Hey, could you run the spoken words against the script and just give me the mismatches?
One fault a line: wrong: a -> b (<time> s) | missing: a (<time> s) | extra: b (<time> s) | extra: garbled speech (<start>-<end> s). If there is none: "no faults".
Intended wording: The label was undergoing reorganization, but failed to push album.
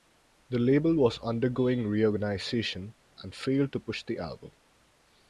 wrong: but -> and (3.2 s)
extra: the (4.0 s)